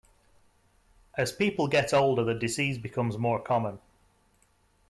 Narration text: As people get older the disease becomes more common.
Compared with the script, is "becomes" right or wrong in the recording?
right